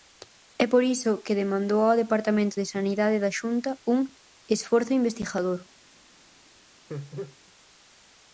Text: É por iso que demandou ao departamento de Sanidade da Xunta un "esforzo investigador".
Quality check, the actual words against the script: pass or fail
pass